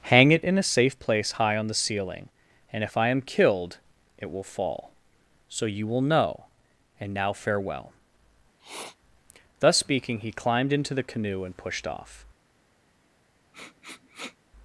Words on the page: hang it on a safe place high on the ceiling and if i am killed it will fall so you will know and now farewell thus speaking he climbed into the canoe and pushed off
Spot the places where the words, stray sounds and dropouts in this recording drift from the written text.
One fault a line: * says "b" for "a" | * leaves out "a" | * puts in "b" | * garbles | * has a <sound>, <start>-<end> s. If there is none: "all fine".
* says "in" for "on"
* has a sniff, 8.6-9.0 s
* has a sniff, 13.5-14.4 s